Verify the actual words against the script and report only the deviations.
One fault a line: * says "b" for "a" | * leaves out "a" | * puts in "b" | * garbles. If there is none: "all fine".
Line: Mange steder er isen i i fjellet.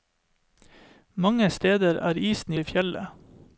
all fine